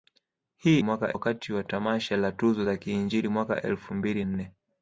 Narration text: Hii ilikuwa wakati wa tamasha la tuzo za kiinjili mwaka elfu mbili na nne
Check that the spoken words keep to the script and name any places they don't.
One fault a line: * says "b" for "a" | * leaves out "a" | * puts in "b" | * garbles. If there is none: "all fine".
* says "mwaka" for "ilikuwa"
* leaves out "na"